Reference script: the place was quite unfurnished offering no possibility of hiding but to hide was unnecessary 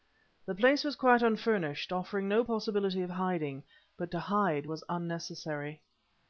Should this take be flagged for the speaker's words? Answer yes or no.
no